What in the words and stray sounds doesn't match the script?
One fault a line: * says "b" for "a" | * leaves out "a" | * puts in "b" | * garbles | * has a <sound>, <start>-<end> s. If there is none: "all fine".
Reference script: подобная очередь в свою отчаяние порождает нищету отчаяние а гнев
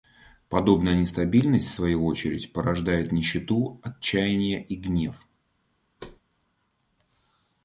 * says "нестабильность" for "очередь"
* says "очередь" for "отчаяние"
* says "и" for "а"
* has a thud, 6.0-6.2 s